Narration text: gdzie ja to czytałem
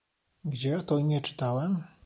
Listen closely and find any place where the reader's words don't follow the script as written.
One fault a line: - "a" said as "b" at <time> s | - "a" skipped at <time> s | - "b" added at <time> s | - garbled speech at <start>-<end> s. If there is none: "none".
- "imię" added at 1.0 s